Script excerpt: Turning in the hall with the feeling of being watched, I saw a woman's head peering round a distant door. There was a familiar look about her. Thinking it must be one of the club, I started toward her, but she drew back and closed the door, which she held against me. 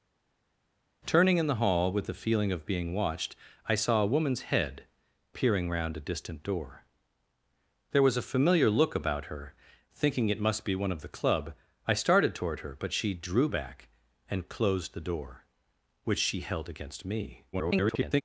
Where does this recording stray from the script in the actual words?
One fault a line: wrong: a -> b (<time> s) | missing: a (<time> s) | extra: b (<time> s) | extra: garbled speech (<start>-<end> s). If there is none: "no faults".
extra: garbled speech (17.5-18.2 s)